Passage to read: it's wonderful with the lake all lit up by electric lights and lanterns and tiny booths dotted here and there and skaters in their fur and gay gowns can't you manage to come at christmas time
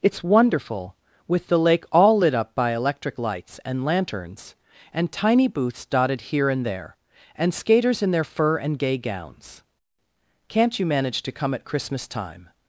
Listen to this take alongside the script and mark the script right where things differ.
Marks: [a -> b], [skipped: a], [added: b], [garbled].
it's wonderful with the lake all lit up by electric lights and lanterns and tiny booths dotted here and there and skaters in their fur and gay gowns can't you manage to come at christmas time